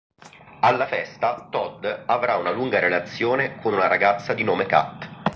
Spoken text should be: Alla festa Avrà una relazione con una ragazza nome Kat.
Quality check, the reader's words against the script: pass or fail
fail